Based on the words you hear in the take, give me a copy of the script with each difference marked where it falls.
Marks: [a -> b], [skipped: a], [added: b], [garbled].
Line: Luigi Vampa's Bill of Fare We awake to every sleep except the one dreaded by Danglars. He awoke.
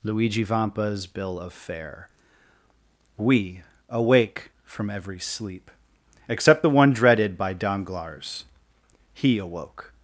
Luigi Vampa's Bill of Fare We awake [to -> from] every sleep except the one dreaded by Danglars. He awoke.